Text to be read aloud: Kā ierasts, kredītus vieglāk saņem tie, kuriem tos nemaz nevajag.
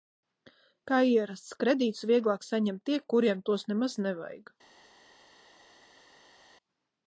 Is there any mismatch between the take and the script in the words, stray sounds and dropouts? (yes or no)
no